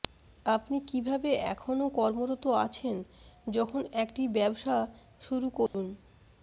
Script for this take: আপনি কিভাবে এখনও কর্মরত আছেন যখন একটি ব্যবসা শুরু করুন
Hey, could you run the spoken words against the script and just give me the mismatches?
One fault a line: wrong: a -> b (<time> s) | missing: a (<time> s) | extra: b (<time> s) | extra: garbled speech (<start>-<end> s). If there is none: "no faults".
no faults